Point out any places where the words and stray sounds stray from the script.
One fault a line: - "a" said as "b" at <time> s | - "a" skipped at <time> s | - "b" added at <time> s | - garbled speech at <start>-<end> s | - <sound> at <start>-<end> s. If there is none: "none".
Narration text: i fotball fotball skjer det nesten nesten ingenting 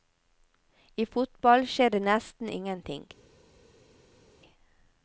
- "fotball" skipped at 1.7 s
- "nesten" skipped at 2.5 s